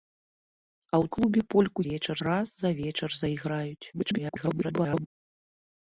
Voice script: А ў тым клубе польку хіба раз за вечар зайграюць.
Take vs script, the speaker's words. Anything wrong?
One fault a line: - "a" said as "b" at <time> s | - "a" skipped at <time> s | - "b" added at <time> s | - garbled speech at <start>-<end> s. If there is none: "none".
- "тым" skipped at 1.1 s
- "хіба" said as "вечар" at 1.9 s
- garbled speech at 3.9-5.1 s